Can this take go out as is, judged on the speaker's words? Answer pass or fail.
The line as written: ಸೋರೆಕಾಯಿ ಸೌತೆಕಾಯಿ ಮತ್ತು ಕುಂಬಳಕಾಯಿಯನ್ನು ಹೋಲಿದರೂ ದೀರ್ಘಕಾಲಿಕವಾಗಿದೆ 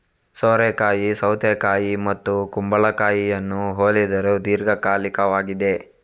pass